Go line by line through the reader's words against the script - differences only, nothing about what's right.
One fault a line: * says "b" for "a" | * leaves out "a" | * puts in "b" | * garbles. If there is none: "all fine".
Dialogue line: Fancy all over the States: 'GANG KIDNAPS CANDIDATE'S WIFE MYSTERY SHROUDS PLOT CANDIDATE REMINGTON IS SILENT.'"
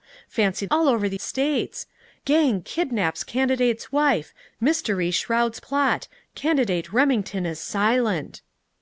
all fine